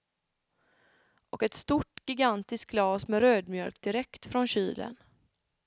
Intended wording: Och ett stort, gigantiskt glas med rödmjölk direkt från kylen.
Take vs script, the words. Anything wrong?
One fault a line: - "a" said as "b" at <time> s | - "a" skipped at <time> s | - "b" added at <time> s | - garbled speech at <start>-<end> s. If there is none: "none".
none